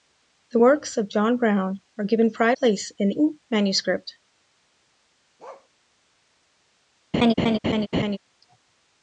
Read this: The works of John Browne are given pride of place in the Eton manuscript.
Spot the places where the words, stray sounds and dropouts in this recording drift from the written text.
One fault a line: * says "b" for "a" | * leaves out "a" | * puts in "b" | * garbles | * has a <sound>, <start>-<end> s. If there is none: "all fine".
* leaves out "of"
* leaves out "the"
* has a bark, 5.4-5.7 s
* has a laugh, 7.1-8.2 s